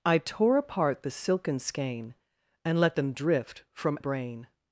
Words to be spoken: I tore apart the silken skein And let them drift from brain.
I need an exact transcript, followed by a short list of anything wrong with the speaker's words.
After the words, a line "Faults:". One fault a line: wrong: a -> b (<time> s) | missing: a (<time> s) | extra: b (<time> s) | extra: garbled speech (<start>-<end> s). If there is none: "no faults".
I tore apart the silken skein And let them drift from brain.
Faults:
no faults